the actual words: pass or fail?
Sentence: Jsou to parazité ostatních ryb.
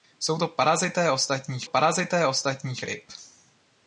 fail